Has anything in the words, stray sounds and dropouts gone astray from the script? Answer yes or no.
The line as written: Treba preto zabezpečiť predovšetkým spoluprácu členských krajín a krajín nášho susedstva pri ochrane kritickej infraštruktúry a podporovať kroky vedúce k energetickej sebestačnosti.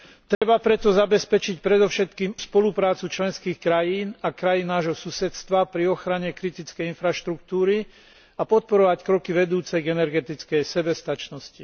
yes